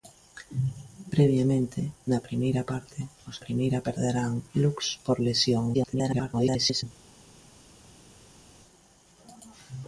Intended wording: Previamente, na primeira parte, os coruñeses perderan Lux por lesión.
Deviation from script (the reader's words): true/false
true